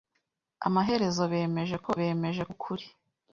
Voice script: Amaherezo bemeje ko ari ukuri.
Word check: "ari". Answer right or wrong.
wrong